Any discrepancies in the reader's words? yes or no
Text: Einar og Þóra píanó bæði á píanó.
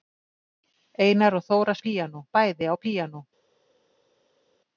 no